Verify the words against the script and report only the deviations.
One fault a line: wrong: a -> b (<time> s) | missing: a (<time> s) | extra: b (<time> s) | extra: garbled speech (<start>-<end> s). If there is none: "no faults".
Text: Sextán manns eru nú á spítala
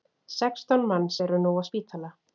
no faults